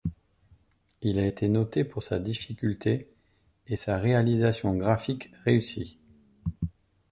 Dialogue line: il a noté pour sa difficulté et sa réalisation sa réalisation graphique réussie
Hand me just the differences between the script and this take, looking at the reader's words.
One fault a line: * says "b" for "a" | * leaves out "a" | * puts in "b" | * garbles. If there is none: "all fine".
* puts in "été"
* leaves out "sa réalisation"